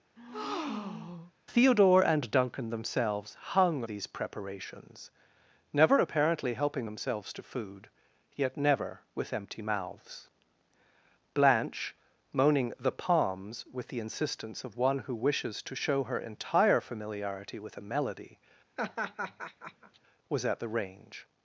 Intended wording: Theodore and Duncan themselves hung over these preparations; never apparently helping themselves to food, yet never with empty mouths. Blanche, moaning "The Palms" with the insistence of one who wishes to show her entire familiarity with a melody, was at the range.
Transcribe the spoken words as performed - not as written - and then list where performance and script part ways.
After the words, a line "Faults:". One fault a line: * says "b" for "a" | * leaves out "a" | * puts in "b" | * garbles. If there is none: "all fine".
Theodore and Duncan themselves hung these preparations; never apparently helping themselves to food, yet never with empty mouths. Blanche, moaning "The Palms" with the insistence of one who wishes to show her entire familiarity with a melody, was at the range.
Faults:
* leaves out "over"